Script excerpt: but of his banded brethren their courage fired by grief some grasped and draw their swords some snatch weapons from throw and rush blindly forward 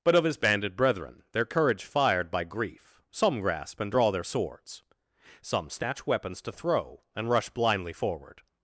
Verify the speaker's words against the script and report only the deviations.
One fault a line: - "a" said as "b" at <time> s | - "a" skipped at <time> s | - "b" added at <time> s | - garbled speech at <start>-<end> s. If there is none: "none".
- "grasped" said as "grasp" at 3.4 s
- "from" said as "to" at 6.4 s